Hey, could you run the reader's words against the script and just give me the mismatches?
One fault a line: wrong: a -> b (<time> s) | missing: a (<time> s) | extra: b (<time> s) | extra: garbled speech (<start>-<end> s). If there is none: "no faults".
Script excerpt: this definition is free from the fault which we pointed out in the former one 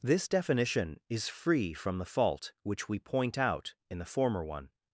wrong: pointed -> point (3.0 s)